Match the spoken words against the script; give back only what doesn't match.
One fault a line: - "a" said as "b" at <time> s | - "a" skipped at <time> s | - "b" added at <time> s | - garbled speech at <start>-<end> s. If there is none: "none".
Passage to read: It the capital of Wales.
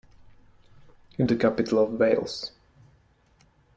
none